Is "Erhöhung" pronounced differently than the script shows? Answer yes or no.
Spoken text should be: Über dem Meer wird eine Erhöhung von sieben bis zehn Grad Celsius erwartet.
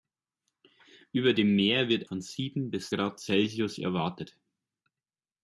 yes